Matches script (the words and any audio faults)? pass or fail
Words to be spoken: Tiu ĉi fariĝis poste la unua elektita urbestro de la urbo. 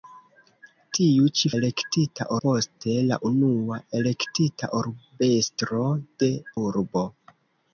fail